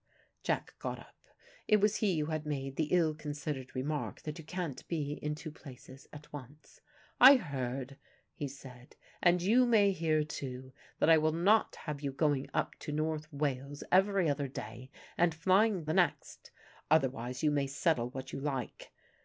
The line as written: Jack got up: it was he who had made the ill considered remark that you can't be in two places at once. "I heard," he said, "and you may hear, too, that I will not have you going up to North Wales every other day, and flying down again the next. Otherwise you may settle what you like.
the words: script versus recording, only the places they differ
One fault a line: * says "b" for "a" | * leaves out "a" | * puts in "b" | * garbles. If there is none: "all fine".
* leaves out "down again"